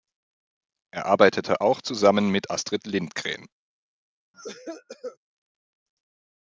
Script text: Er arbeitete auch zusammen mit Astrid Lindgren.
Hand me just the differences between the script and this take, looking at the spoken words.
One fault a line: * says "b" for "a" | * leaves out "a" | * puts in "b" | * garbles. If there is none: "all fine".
all fine